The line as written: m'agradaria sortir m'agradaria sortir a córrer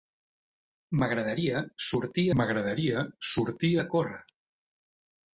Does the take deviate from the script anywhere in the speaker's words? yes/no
no